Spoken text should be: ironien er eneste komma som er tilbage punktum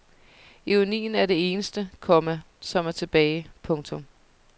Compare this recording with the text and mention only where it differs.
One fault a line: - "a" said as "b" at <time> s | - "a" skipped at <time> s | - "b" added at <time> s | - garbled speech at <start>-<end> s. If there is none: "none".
- "det" added at 1.2 s